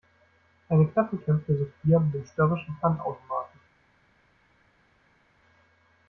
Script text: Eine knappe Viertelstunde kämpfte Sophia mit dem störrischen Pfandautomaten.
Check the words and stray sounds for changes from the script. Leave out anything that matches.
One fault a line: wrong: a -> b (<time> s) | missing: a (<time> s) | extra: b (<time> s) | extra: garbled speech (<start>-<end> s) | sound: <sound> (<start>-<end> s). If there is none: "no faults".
missing: Viertelstunde (1.2 s)